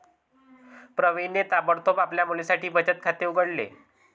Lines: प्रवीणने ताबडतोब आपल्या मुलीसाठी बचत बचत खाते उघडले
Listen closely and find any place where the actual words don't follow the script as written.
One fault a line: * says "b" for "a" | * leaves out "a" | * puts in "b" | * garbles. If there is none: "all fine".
* leaves out "बचत"